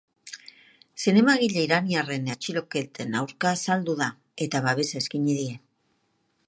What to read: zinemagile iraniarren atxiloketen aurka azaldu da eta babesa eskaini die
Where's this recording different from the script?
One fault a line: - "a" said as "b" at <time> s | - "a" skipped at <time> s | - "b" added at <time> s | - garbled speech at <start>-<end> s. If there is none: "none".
none